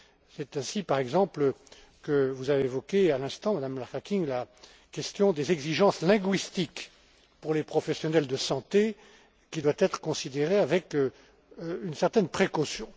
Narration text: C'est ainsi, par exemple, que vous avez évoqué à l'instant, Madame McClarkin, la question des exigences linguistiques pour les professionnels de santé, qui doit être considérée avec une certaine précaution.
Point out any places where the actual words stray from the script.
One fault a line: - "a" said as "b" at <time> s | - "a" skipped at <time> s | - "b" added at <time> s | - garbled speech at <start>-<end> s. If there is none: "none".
none